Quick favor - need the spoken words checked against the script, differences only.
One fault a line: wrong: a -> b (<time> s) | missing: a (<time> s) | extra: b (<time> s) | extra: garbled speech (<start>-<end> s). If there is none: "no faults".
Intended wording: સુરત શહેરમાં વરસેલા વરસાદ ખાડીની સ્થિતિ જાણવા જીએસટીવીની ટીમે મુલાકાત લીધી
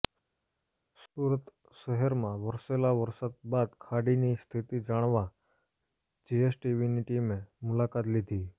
extra: બાદ (3.5 s)